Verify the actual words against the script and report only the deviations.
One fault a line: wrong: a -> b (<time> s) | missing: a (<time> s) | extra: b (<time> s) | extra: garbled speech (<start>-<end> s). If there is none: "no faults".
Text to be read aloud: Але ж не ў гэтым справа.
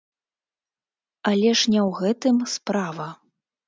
no faults